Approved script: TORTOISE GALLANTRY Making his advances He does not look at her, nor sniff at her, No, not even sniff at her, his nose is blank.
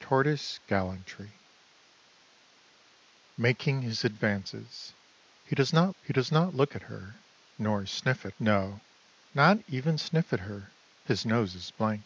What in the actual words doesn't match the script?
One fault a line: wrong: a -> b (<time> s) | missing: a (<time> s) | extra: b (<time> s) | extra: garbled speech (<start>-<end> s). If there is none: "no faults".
extra: He does not (6.0 s)
missing: her (8.3 s)